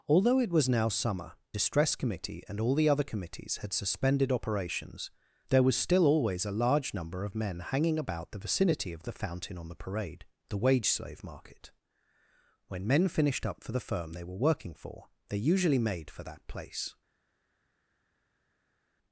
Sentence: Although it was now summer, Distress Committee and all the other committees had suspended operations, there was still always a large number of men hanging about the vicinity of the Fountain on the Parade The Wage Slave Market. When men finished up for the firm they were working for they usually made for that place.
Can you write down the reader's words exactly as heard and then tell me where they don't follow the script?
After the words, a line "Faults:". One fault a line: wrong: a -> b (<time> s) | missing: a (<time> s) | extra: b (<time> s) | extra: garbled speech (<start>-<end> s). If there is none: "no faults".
Although it was now summer, Distress Committee and all the other committees had suspended operations, there was still always a large number of men hanging about the vicinity of the Fountain on the Parade The Wage Slave Market. When men finished up for the firm they were working for they usually made for that place.
Faults:
no faults